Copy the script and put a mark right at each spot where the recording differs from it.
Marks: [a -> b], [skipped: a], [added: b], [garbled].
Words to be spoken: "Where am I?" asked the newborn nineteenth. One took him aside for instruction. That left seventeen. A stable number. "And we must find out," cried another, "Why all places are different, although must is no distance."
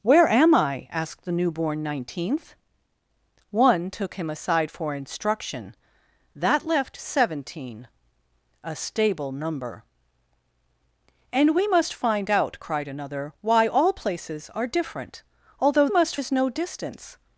"Where am I?" asked the newborn nineteenth. One took him aside for instruction. That left seventeen. A stable number. "And we must find out," cried another, "Why all places are different, although must is no distance."